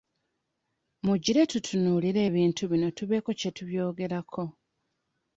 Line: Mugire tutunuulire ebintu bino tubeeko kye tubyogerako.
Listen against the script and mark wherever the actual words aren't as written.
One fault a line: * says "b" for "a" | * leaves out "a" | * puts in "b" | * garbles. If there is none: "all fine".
all fine